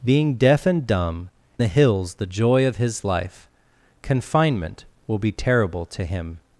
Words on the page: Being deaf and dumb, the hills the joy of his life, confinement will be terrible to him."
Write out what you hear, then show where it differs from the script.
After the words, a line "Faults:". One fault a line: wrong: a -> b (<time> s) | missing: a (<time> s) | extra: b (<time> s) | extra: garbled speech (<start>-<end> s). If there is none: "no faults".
Being deaf and dumb, the hills the joy of his life, confinement will be terrible to him."
Faults:
no faults